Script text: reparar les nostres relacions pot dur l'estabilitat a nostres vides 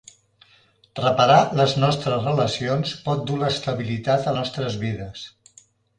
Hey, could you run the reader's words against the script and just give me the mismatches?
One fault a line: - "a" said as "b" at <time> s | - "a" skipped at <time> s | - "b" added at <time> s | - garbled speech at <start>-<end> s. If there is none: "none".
none